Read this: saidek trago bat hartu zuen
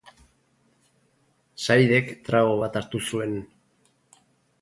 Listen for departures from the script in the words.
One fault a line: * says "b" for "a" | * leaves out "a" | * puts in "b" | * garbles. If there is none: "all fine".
all fine